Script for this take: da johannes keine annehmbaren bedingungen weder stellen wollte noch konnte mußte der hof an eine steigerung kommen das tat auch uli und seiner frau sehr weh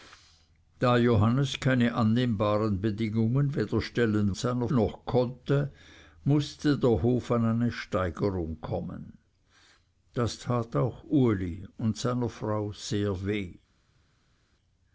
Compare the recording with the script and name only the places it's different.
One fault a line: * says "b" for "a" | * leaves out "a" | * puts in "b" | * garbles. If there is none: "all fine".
* says "seiner" for "wollte"